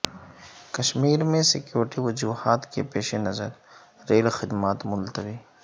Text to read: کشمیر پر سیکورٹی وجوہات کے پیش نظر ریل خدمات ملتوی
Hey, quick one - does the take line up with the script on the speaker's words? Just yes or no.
no